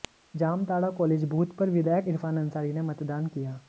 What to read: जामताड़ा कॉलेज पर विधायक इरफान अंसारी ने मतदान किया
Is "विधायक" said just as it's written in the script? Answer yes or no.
yes